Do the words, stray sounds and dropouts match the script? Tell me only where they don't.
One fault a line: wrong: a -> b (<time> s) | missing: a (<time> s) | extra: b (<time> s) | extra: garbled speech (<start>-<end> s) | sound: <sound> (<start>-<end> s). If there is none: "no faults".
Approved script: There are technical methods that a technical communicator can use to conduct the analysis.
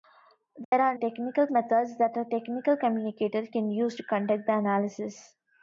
sound: dropout (0.6-0.7 s)